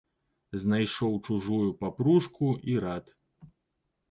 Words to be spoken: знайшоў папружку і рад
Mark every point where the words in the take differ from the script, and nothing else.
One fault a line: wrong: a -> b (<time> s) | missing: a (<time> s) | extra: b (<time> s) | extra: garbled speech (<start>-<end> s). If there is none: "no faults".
extra: чужую (1.3 s)